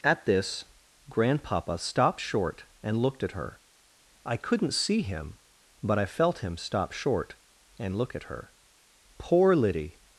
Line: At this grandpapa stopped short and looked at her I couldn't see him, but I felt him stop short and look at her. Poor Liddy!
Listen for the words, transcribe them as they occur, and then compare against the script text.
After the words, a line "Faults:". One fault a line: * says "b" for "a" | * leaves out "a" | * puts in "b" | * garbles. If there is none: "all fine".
At this grandpapa stopped short and looked at her I couldn't see him, but I felt him stop short and look at her. Poor Liddy!
Faults:
all fine